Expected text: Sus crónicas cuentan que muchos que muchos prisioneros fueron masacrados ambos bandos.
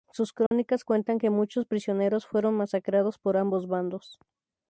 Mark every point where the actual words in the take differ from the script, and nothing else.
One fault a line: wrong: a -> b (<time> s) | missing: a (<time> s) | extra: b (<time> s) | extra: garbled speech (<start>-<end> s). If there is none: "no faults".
missing: que muchos (1.6 s)
extra: por (3.2 s)